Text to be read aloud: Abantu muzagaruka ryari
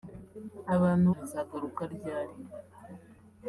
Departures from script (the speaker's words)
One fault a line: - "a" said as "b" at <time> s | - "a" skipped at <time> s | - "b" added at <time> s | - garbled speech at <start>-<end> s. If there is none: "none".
none